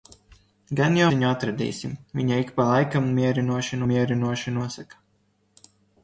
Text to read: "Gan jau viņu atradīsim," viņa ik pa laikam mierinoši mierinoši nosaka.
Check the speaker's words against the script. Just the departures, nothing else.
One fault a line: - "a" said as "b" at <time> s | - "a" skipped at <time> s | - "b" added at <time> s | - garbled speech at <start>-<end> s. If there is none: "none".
none